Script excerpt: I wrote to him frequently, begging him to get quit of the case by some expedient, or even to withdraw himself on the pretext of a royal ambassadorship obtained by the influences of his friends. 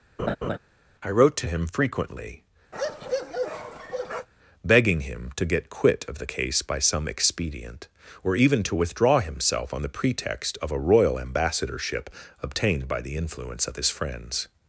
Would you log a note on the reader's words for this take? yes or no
yes